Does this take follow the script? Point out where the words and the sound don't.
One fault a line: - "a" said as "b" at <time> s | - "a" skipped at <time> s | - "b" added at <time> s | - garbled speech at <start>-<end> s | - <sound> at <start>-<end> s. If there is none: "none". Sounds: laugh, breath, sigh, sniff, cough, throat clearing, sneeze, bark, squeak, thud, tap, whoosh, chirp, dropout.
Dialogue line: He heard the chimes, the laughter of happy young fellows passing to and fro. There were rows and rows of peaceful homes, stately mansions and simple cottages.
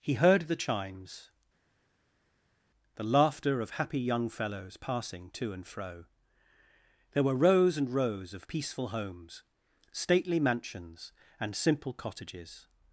none